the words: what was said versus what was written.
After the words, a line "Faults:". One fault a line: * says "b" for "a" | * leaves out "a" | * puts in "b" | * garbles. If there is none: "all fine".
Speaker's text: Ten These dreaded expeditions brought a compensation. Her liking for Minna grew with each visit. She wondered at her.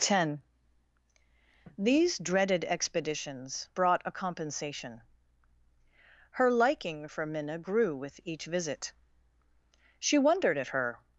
Ten These dreaded expeditions brought a compensation. Her liking for Minna grew with each visit. She wondered at her.
Faults:
all fine